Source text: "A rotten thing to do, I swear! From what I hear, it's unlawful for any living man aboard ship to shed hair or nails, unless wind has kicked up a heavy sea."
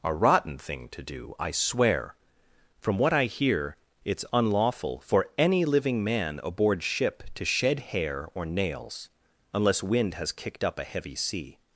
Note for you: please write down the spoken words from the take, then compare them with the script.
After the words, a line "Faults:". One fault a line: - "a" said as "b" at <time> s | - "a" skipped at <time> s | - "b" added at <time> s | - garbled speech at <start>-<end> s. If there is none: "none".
"A rotten thing to do, I swear! From what I hear, it's unlawful for any living man aboard ship to shed hair or nails, unless wind has kicked up a heavy sea."
Faults:
none